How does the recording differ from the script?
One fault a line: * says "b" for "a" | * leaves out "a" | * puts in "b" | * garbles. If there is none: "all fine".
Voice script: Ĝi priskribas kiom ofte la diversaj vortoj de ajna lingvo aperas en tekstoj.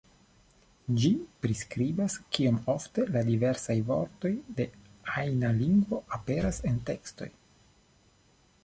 all fine